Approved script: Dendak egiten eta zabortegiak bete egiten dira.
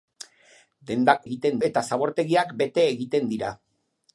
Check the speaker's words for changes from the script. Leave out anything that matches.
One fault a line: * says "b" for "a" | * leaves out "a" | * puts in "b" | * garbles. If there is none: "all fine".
all fine